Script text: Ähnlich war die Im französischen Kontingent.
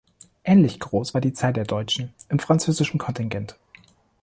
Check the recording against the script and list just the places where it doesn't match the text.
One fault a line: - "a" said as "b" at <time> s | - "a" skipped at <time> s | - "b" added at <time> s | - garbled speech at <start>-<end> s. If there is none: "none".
- "groß" added at 0.8 s
- "Zahl der Deutschen" added at 1.3 s